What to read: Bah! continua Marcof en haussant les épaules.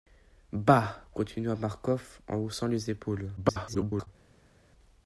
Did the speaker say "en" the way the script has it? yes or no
yes